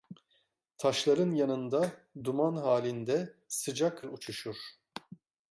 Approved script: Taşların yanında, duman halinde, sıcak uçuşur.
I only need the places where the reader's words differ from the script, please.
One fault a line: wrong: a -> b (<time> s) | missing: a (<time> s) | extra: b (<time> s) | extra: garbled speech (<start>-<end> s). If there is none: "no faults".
no faults